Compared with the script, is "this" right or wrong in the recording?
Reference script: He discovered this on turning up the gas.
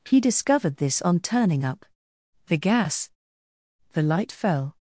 right